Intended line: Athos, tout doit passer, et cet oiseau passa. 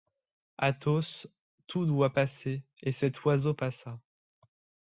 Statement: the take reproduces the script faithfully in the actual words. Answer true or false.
true